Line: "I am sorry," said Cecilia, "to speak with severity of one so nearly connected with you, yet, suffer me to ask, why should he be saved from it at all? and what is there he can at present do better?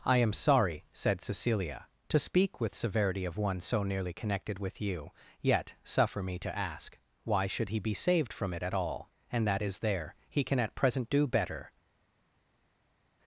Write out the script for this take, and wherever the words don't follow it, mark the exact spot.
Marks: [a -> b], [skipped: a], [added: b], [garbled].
"I am sorry," said Cecilia, "to speak with severity of one so nearly connected with you, yet, suffer me to ask, why should he be saved from it at all? and [what -> that] is there he can at present do better?